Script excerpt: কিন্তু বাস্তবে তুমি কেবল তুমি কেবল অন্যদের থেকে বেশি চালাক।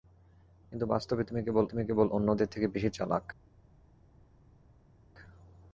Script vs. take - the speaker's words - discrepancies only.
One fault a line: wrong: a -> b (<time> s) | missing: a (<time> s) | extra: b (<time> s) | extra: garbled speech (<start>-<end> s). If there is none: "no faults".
no faults